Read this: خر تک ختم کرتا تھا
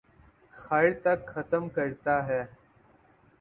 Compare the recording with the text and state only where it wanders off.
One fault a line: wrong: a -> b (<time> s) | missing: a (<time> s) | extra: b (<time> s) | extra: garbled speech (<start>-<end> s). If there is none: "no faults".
wrong: تھا -> ہے (2.3 s)